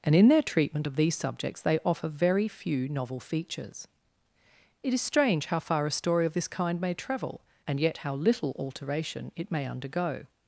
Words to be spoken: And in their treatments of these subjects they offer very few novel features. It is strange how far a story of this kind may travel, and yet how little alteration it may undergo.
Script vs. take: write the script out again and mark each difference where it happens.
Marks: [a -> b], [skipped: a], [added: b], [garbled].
And in their [treatments -> treatment] of these subjects they offer very few novel features. It is strange how far a story of this kind may travel, and yet how little alteration it may undergo.